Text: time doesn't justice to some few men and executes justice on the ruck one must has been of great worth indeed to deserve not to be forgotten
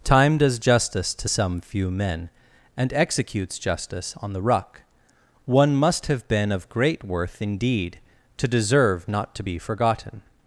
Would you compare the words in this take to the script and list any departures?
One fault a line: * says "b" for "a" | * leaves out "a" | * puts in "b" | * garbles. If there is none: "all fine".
* says "does" for "doesn't"
* says "have" for "has"